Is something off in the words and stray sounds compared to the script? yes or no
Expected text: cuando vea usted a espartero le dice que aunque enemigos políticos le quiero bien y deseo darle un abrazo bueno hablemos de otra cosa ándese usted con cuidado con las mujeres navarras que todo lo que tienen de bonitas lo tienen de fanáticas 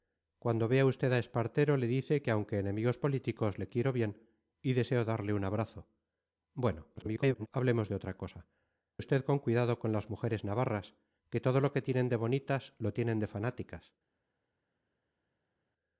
yes